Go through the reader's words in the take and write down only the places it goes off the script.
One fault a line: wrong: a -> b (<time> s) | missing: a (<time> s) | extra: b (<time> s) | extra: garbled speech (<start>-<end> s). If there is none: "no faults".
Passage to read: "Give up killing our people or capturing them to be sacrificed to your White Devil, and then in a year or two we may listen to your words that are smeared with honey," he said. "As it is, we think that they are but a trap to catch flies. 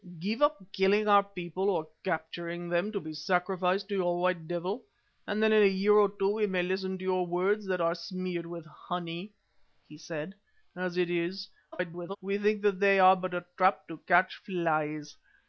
extra: garbled speech (11.7-12.2 s)